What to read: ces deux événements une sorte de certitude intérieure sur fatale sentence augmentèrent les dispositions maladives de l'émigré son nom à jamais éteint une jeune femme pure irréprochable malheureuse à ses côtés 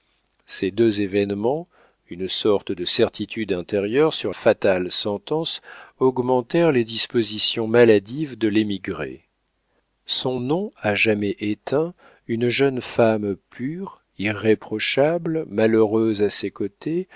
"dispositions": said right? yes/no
yes